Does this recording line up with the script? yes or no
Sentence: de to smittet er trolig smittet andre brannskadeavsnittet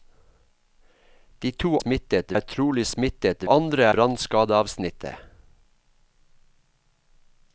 yes